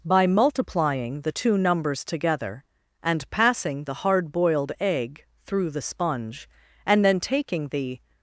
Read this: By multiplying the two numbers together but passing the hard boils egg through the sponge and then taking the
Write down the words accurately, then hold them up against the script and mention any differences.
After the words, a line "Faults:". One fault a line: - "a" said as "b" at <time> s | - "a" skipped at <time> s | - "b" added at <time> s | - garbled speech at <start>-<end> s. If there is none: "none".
By multiplying the two numbers together and passing the hard boiled egg through the sponge and then taking the
Faults:
- "but" said as "and" at 3.0 s
- "boils" said as "boiled" at 4.3 s